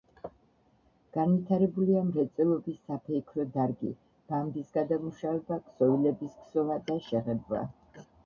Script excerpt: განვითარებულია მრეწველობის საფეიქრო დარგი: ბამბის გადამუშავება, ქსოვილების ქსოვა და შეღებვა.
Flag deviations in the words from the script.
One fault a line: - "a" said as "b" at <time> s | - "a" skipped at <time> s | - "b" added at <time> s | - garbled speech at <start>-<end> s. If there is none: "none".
none